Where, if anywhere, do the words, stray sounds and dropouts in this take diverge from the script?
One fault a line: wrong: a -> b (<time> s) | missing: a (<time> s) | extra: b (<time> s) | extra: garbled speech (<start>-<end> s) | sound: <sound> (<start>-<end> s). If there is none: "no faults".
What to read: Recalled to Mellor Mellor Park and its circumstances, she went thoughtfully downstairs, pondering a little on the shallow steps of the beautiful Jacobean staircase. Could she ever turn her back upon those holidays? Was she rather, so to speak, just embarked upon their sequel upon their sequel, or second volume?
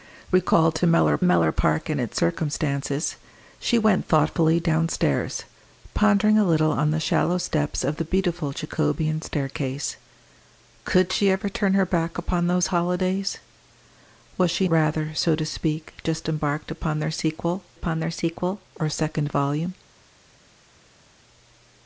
no faults